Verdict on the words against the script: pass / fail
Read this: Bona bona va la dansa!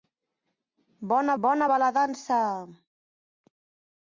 pass